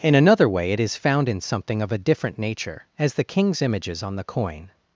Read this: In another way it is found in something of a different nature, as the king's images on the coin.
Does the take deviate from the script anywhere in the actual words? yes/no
no